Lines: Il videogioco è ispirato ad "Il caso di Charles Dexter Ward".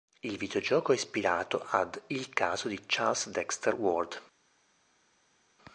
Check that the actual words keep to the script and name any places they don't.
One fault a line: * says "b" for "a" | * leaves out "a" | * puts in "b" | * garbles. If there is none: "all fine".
all fine